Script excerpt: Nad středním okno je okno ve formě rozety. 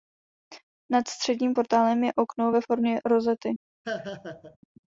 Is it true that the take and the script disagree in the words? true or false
true